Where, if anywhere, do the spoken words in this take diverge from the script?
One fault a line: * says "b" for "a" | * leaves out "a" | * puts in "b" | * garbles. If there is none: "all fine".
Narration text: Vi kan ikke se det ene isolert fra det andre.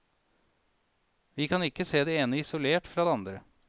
all fine